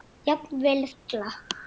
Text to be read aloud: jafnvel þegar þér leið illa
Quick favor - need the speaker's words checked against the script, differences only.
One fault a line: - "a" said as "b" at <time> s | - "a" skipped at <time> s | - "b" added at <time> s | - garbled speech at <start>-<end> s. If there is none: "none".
- "þegar þér leið" skipped at 0.8 s